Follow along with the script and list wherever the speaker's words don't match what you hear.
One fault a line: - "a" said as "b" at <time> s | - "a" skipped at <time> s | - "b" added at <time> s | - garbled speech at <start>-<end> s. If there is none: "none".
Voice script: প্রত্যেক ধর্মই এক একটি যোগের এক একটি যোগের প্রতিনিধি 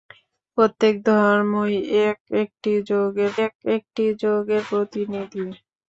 none